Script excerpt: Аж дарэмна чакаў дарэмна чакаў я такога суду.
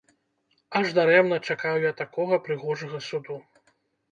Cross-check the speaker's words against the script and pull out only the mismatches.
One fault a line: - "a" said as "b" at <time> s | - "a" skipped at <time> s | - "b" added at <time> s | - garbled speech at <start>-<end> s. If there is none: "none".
- "дарэмна чакаў" skipped at 1.8 s
- "прыгожага" added at 2.5 s